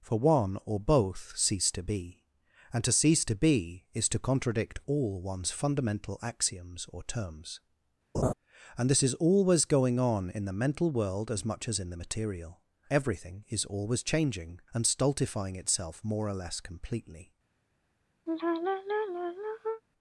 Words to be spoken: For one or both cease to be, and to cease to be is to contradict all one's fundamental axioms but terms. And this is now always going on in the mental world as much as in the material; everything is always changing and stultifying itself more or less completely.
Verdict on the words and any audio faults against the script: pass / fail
fail